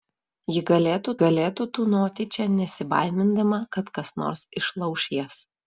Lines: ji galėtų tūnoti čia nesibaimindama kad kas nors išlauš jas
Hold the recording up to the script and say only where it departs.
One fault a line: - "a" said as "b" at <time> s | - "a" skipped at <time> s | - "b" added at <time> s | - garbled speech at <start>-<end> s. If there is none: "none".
- "galėtų" added at 1.2 s